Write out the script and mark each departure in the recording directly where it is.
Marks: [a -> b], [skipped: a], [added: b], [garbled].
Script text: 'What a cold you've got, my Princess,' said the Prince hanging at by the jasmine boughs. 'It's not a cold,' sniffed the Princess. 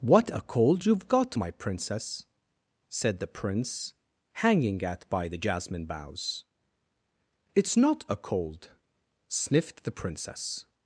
'What a cold you've got, my Princess,' said the Prince hanging at by the jasmine boughs. 'It's not a cold,' sniffed the Princess.